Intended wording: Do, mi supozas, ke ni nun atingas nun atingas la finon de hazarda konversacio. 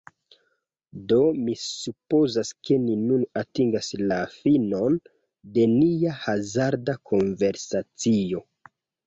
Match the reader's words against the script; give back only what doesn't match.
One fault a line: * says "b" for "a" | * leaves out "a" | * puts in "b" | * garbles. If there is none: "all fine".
* leaves out "nun atingas"
* puts in "nia"